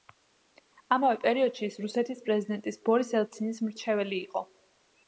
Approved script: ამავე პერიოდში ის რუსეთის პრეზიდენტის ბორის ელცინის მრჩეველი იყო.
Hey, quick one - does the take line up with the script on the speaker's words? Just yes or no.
yes